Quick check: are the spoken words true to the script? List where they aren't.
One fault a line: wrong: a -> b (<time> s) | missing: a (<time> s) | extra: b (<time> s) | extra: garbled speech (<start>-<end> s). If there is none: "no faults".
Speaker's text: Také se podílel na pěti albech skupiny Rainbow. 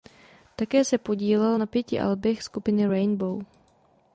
no faults